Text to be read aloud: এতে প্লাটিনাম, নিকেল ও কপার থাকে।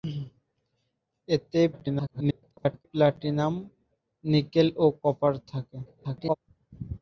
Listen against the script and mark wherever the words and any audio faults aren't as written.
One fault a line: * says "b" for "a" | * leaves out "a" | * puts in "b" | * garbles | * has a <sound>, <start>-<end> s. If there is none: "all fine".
* garbles
* garbles